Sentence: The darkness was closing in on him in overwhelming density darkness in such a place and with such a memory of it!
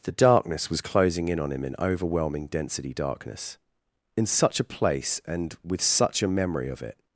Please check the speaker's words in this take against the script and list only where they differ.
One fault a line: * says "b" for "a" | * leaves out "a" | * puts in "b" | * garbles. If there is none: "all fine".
all fine